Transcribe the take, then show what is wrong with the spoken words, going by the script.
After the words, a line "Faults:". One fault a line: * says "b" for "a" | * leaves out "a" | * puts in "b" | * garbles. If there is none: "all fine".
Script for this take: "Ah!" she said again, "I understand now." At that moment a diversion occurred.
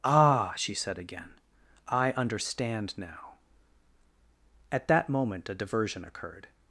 "Ah!" she said again, "I understand now." At that moment a diversion occurred.
Faults:
all fine